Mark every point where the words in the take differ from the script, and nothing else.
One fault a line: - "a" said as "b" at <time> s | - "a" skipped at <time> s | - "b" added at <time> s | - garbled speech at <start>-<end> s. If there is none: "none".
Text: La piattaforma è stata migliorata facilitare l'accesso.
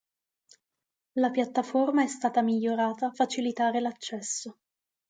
none